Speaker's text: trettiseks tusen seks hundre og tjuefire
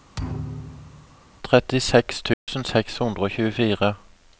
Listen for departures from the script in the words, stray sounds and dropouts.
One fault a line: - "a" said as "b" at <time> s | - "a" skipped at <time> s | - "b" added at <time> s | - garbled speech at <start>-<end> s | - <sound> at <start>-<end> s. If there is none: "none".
- thud at 0.1-1.2 s
- dropout at 2.3-2.5 s